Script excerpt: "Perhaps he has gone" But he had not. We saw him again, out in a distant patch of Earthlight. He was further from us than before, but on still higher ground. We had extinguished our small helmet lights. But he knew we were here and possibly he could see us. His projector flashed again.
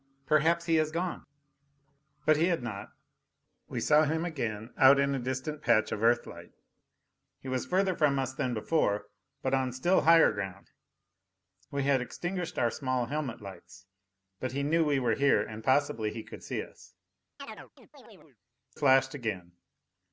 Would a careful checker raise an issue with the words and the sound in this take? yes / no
yes